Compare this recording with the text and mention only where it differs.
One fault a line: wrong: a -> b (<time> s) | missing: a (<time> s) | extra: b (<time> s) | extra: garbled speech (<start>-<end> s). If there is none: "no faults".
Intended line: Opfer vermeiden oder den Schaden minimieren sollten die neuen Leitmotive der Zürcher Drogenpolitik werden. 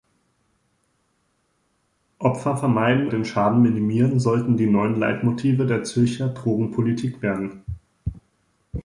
missing: oder (3.1 s)